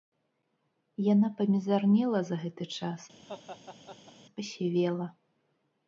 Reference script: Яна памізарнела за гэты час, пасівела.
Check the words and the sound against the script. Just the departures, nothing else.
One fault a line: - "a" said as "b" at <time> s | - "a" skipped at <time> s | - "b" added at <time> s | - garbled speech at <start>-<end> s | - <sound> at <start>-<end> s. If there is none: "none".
- laugh at 3.2-4.1 s